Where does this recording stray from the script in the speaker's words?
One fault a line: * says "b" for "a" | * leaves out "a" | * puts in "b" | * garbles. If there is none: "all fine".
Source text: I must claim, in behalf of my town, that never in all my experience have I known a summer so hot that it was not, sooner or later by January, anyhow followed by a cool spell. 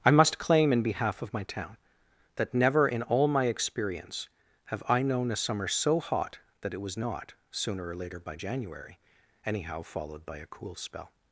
all fine